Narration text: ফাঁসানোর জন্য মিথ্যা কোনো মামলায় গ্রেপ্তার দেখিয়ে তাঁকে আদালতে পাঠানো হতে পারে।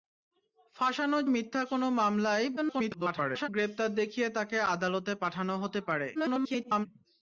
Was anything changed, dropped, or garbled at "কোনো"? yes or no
no